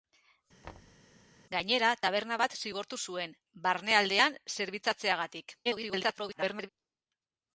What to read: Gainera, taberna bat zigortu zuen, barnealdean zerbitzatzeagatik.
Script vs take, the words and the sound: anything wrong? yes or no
yes